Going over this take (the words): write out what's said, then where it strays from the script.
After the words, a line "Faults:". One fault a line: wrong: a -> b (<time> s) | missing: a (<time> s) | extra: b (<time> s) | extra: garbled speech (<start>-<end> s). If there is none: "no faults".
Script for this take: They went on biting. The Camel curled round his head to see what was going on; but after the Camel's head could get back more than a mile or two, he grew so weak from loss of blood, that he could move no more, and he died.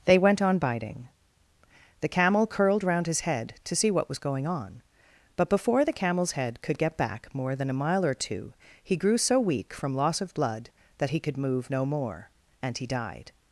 They went on biting. The Camel curled round his head to see what was going on; but before the Camel's head could get back more than a mile or two, he grew so weak from loss of blood, that he could move no more, and he died.
Faults:
wrong: after -> before (5.5 s)